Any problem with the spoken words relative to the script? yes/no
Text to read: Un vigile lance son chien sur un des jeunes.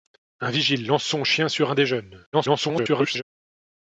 yes